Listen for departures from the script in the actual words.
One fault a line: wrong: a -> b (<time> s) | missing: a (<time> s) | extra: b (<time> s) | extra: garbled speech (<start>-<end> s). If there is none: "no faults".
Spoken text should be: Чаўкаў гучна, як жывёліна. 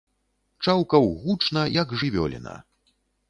no faults